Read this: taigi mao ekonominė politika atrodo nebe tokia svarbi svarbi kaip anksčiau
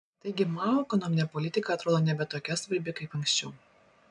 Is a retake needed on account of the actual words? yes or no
yes